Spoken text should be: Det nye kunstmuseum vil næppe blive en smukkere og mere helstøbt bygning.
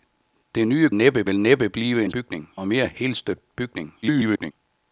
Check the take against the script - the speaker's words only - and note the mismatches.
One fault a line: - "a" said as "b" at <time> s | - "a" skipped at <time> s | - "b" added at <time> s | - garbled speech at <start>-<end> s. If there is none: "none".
- "kunstmuseum" said as "næppe" at 0.9 s
- "smukkere" said as "bygning" at 2.1 s
- garbled speech at 4.0-4.5 s